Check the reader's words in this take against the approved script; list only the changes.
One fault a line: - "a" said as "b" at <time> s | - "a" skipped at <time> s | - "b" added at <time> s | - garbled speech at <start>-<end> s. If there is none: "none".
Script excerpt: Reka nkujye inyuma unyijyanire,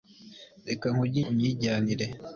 - "inyuma" skipped at 1.2 s